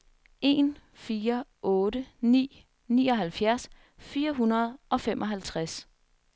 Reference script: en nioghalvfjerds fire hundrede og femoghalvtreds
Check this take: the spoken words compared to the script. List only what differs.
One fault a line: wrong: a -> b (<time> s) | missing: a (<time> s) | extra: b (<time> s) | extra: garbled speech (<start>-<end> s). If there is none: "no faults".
extra: fire otte ni (0.9 s)